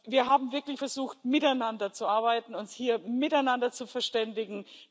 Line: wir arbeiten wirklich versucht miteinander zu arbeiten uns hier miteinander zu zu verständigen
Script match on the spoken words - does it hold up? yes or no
no